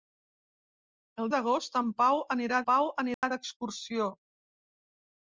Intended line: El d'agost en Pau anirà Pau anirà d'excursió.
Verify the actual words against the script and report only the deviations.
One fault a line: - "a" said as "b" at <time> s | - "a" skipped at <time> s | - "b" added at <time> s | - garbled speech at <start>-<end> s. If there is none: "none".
none